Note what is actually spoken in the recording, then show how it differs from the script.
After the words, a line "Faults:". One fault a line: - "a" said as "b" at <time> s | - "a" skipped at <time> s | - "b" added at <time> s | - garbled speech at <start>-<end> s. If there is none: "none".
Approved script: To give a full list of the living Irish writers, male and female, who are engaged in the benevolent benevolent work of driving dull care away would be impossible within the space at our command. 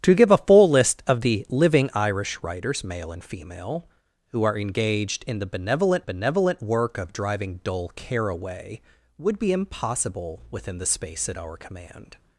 To give a full list of the living Irish writers, male and female, who are engaged in the benevolent benevolent work of driving dull care away would be impossible within the space at our command.
Faults:
none